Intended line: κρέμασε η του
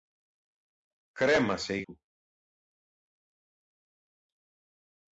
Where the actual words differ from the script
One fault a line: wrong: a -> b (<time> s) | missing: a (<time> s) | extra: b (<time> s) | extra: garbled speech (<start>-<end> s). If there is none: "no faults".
no faults